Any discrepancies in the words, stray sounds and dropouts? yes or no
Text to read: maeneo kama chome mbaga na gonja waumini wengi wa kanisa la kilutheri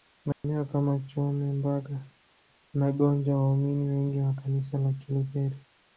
yes